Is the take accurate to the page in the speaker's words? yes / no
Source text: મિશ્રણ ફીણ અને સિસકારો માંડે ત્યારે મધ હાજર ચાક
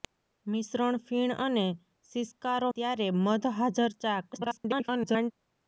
no